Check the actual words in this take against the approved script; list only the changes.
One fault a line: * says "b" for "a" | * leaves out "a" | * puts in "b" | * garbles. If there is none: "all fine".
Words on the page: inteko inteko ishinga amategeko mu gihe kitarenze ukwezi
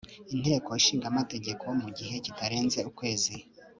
* leaves out "inteko"